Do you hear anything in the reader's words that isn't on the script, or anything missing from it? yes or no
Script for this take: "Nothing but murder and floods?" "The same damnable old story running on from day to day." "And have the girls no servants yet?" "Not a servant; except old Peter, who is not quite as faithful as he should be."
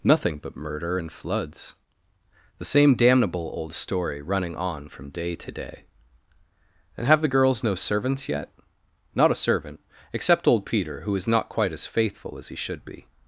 no